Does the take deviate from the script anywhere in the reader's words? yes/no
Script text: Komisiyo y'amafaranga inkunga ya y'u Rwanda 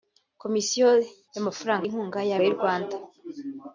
no